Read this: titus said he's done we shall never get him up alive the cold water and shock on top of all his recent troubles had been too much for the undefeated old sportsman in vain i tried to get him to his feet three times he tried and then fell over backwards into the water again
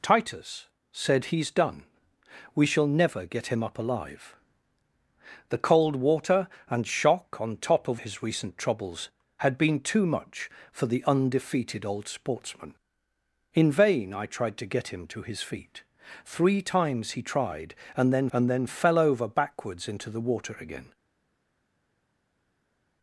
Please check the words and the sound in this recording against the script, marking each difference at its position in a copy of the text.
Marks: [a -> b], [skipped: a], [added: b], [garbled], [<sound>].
titus said he's done we shall never get him up alive the cold water and shock on top of [skipped: all] his recent troubles had been too much for the undefeated old sportsman in vain i tried to get him to his feet three times he tried and then [added: and then] fell over backwards into the water again